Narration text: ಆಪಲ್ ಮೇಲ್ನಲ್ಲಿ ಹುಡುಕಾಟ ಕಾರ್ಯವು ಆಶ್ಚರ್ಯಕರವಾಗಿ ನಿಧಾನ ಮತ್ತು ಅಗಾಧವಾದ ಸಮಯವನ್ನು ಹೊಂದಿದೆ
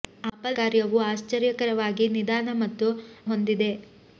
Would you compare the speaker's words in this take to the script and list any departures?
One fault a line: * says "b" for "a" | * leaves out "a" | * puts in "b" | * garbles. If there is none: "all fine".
* leaves out "ಮೇಲ್ನಲ್ಲಿ ಹುಡುಕಾಟ"
* leaves out "ಅಗಾಧವಾದ ಸಮಯವನ್ನು"